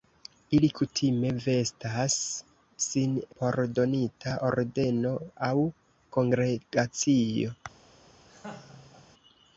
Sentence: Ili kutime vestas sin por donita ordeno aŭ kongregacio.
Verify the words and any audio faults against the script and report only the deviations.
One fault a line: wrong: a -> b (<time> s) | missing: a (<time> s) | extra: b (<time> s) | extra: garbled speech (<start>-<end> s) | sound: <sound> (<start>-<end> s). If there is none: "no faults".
sound: laugh (8.3-9.1 s)